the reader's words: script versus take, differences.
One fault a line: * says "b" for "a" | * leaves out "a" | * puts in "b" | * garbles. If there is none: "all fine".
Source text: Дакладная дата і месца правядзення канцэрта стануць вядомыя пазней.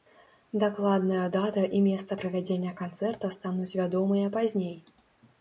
all fine